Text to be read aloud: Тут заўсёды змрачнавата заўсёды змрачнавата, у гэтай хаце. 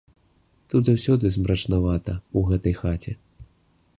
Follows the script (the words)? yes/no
no